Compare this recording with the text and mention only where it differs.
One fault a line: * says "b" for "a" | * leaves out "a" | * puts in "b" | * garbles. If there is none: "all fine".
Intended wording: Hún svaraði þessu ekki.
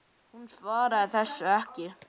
all fine